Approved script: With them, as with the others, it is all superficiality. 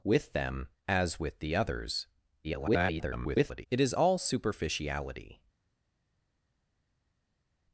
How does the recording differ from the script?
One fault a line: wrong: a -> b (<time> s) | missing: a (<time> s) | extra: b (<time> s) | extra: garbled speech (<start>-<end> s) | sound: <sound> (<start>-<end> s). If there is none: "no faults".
extra: garbled speech (2.4-3.7 s)